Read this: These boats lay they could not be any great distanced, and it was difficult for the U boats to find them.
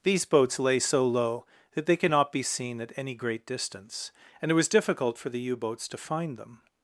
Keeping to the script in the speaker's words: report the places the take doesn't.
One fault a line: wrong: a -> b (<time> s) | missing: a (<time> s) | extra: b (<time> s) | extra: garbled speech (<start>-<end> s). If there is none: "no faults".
extra: so low that (0.8 s)
extra: seen at (2.4 s)
wrong: distanced -> distance (3.5 s)